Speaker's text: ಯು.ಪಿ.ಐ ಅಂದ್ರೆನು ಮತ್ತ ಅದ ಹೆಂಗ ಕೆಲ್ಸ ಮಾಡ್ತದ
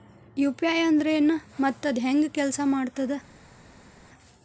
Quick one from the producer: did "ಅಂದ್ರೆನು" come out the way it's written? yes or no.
yes